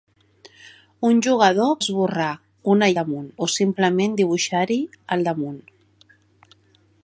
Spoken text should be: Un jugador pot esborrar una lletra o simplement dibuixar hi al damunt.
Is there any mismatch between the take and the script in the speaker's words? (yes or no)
yes